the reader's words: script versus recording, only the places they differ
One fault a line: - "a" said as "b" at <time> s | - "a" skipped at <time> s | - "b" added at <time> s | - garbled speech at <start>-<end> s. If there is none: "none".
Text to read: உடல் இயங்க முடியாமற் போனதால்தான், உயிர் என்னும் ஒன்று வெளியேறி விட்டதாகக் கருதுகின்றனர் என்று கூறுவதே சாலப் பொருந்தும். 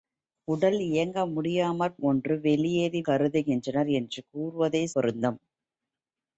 - "போனதால்தான் உயிர் என்னும்" skipped at 2.0 s
- "விட்டதாகக்" skipped at 3.0 s
- "சாலப்" skipped at 4.8 s